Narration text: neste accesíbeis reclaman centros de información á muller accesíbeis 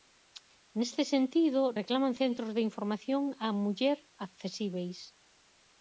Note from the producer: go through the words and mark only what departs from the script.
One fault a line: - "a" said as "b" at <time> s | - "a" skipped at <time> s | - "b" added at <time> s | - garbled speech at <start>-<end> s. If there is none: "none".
- "accesíbeis" said as "sentido" at 1.1 s